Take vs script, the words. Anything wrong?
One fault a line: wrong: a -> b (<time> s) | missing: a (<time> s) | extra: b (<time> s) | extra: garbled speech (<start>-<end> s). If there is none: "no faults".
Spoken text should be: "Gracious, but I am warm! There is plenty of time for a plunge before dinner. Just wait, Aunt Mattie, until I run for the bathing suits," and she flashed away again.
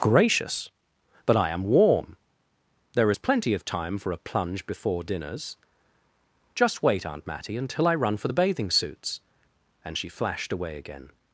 wrong: dinner -> dinners (5.0 s)